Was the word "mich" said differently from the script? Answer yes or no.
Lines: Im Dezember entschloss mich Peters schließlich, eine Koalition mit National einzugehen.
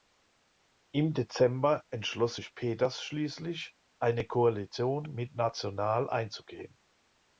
yes